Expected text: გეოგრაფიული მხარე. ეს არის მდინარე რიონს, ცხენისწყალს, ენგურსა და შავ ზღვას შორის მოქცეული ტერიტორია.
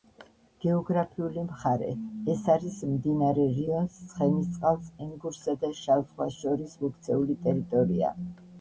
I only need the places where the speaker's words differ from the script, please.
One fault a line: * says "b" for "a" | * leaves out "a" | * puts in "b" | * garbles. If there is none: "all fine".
all fine